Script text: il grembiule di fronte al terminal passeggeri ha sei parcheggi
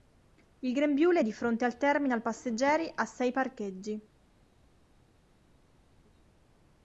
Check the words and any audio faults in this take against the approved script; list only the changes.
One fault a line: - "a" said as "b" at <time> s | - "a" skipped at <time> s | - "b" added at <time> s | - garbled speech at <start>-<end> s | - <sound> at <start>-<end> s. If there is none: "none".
none